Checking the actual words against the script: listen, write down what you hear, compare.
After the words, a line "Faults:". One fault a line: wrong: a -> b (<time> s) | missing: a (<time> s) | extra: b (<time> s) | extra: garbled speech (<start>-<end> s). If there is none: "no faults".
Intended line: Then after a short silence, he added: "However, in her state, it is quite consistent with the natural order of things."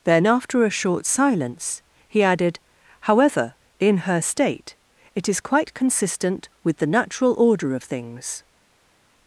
Then after a short silence, he added: "However, in her state, it is quite consistent with the natural order of things."
Faults:
no faults